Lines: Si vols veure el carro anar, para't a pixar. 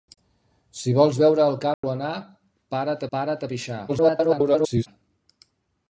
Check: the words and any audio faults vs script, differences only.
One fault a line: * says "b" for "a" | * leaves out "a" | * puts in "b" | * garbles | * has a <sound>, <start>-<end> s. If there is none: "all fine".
* has a dropout, 1.7-1.8 s
* puts in "para't"
* garbles